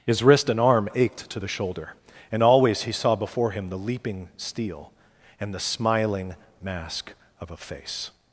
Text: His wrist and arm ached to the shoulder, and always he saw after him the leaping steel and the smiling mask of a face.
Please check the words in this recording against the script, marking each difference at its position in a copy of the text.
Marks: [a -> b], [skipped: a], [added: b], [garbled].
His wrist and arm ached to the shoulder, and always he saw [after -> before] him the leaping steel and the smiling mask of a face.